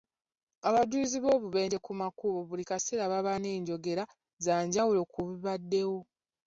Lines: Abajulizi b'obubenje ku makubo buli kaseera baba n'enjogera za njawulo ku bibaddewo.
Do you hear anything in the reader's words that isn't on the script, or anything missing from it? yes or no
no